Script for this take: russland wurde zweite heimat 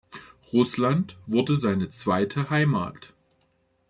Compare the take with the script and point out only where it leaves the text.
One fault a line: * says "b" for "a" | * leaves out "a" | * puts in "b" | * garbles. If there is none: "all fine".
* puts in "seine"